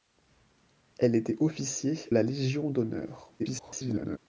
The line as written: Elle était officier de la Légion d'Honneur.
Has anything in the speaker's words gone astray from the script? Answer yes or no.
yes